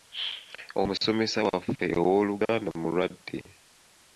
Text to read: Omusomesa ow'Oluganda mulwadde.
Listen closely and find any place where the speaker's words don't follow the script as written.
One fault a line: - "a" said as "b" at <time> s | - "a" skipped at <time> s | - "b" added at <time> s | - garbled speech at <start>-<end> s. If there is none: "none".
- "waffe" added at 1.5 s